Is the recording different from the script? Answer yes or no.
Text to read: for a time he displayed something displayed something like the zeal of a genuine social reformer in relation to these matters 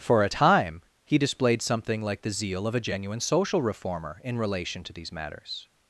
yes